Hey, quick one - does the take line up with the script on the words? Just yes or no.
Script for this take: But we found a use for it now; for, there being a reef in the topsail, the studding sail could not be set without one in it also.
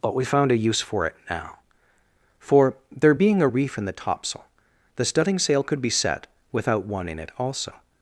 no